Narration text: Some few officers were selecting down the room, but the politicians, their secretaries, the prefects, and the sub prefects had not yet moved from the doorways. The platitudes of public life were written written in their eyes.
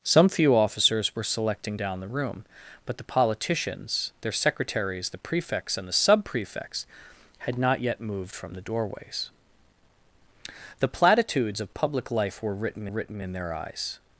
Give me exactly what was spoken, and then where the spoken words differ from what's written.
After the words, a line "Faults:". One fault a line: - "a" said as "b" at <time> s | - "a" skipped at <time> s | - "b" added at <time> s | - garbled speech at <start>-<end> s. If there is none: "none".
Some few officers were selecting down the room, but the politicians, their secretaries, the prefects, and the sub prefects had not yet moved from the doorways. The platitudes of public life were written written in their eyes.
Faults:
none